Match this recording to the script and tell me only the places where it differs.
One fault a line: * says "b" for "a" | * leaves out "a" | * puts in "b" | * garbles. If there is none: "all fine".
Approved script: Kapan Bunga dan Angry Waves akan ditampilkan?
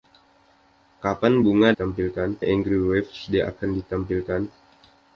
* says "ditampilkan" for "dan"